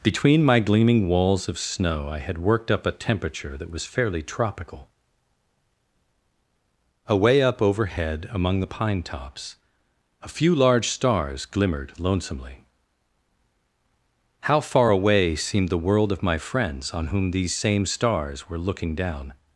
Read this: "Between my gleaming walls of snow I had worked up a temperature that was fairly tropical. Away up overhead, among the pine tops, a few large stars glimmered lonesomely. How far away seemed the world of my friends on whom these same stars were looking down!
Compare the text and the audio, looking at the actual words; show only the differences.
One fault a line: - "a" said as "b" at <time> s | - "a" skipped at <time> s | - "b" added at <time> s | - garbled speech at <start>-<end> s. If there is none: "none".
none